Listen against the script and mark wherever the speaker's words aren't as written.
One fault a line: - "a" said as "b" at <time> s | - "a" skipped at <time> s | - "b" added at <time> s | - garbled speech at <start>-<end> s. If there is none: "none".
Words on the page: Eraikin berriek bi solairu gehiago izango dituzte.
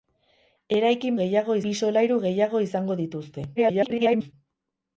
- "berriek" said as "gehiago" at 1.2 s
- garbled speech at 3.6-4.3 s